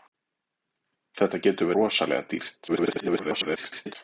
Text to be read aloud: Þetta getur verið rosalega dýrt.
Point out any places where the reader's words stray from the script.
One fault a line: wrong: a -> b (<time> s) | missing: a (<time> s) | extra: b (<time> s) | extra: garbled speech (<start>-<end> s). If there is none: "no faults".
missing: verið (1.7 s)
extra: garbled speech (2.7-4.0 s)